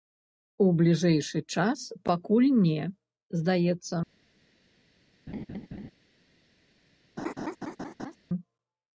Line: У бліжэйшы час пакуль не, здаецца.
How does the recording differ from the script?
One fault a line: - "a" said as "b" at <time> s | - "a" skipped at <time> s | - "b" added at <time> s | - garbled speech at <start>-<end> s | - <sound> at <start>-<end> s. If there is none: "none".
- laugh at 5.3-5.9 s
- laugh at 7.2-8.2 s